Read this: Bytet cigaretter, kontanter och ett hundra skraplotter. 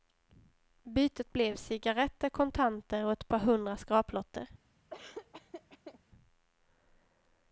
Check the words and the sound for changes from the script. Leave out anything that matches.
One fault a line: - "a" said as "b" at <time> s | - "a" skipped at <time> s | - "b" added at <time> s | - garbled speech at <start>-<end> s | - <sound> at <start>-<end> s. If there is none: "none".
- "blev" added at 1.3 s
- "par" added at 3.3 s
- laugh at 4.9-6.0 s